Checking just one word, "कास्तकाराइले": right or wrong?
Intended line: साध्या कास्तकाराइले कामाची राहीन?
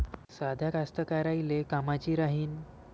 right